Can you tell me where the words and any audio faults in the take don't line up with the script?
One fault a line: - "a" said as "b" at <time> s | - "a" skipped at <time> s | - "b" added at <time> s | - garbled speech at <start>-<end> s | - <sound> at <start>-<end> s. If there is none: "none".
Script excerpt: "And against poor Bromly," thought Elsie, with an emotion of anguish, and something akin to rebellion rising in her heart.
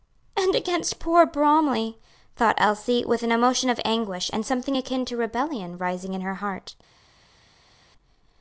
none